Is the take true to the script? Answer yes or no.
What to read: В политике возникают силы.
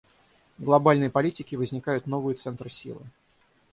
no